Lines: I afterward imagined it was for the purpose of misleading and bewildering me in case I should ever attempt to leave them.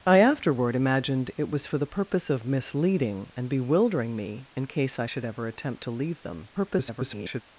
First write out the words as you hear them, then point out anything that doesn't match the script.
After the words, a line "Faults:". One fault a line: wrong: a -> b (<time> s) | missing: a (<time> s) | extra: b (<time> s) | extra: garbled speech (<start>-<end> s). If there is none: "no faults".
I afterward imagined it was for the purpose of misleading and bewildering me in case I should ever attempt to leave them. [garbled]
Faults:
extra: garbled speech (6.5-7.4 s)